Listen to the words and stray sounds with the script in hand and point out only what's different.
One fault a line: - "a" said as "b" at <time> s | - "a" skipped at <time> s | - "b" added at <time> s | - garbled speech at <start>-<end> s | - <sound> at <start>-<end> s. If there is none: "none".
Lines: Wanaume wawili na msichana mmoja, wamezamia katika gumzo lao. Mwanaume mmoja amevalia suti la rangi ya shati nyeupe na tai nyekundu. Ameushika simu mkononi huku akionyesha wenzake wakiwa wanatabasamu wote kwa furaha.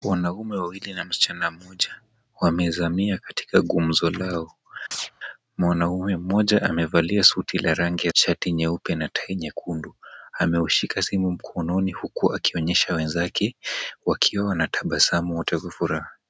- chirp at 4.9-5.1 s